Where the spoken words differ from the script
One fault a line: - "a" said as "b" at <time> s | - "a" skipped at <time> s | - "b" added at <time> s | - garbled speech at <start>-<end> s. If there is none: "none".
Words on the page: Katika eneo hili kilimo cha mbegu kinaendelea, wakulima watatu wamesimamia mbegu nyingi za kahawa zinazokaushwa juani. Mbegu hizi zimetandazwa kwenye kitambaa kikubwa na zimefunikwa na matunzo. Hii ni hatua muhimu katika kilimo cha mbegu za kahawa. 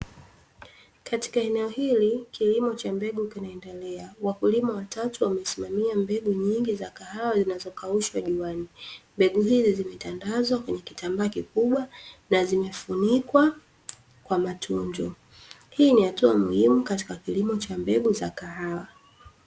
- "na" said as "kwa" at 14.2 s